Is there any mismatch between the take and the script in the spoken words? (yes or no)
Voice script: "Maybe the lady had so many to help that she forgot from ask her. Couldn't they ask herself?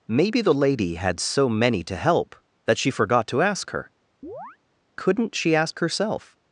yes